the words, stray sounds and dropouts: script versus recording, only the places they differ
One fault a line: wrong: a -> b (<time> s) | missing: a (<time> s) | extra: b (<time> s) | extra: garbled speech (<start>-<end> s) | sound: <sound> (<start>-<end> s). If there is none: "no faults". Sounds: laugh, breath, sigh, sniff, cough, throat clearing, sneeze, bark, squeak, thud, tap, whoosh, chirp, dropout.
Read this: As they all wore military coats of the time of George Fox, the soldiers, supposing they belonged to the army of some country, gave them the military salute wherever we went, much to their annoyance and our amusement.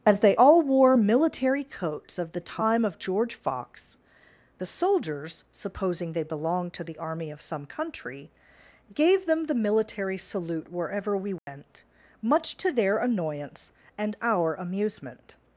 sound: dropout (11.4-11.5 s)